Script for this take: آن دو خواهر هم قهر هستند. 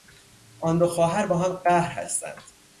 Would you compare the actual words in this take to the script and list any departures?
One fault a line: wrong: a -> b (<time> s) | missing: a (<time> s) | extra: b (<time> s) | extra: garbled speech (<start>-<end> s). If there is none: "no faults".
extra: با (1.3 s)